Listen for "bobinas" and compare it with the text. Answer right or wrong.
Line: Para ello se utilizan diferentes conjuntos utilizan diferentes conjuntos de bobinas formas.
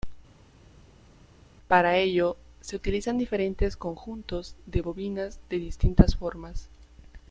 wrong